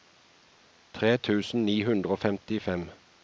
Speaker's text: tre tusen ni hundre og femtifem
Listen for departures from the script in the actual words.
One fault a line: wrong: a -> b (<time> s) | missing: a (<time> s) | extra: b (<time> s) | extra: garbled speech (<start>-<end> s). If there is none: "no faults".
no faults